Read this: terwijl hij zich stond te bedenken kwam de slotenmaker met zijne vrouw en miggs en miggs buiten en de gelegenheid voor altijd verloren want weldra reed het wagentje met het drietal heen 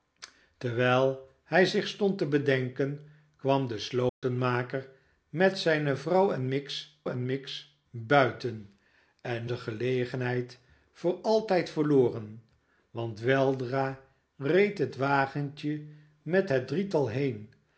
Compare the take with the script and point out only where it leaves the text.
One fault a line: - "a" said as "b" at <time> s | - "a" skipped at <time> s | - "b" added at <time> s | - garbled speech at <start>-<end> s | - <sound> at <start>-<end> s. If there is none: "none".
- dropout at 4.1-4.2 s